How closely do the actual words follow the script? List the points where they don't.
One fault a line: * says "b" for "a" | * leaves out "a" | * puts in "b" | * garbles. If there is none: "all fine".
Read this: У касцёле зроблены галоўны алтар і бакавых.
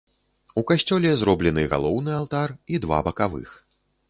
* puts in "два"